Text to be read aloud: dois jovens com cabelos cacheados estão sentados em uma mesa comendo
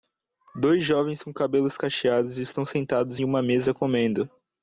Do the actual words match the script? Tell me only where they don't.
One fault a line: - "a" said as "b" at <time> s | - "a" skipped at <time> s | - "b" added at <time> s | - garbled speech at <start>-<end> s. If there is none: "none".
none